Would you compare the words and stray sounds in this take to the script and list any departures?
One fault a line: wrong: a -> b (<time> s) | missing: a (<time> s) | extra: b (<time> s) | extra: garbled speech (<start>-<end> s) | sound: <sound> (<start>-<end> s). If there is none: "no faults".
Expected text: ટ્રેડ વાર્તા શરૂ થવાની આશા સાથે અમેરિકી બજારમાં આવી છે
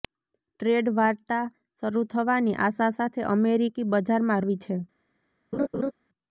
sound: laugh (5.5-5.9 s)